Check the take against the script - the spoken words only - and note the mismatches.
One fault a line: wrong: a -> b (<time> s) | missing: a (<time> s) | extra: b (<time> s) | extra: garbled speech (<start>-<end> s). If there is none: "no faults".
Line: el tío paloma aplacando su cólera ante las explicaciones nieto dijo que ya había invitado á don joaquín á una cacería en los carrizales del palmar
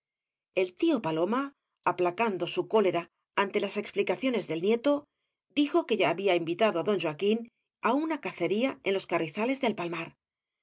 extra: del (4.5 s)